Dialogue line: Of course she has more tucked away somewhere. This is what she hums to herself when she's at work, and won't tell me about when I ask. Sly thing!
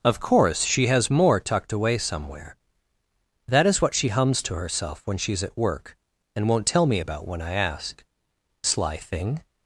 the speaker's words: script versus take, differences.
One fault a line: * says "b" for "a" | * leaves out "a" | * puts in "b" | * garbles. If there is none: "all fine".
* says "That" for "This"